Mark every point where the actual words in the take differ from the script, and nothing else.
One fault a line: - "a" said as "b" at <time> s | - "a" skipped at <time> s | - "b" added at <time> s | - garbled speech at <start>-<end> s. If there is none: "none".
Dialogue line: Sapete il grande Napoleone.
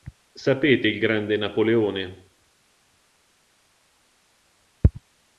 none